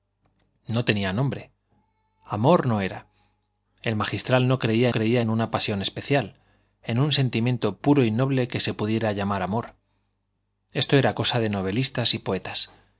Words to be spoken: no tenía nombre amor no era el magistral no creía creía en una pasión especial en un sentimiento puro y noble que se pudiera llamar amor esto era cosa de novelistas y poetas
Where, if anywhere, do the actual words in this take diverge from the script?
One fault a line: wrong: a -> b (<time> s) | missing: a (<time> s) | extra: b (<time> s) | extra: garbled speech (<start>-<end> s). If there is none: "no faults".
no faults